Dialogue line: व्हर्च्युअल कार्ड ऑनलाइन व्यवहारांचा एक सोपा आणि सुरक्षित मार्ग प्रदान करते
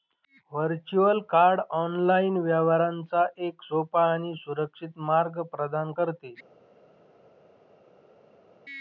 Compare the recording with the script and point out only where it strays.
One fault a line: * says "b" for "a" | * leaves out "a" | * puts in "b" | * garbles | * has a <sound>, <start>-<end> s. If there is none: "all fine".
all fine